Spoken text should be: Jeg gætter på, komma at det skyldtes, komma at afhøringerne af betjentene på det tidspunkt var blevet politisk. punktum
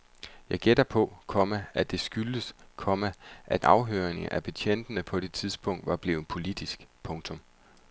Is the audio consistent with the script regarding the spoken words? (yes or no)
yes